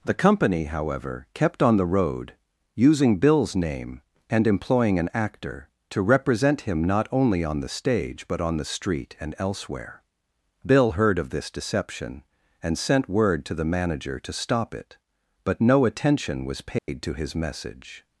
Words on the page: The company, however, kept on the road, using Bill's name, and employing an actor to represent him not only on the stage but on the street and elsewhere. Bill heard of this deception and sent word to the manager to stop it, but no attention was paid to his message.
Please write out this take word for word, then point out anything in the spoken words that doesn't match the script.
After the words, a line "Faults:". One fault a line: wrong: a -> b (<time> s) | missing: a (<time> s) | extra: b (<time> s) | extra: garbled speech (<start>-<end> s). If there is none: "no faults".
The company, however, kept on the road, using Bill's name, and employing an actor to represent him not only on the stage but on the street and elsewhere. Bill heard of this deception and sent word to the manager to stop it, but no attention was paid to his message.
Faults:
no faults